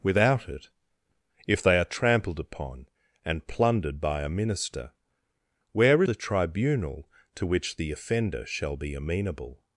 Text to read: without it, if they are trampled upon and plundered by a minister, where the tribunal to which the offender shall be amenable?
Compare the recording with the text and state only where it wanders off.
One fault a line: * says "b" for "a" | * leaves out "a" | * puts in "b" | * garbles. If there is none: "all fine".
all fine